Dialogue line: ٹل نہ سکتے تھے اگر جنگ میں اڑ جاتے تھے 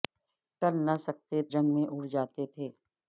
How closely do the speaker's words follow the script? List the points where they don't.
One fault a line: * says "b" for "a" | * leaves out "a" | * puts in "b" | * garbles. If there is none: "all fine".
* leaves out "تھے اگر"